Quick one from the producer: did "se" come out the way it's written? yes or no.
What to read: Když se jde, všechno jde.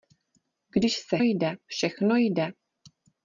yes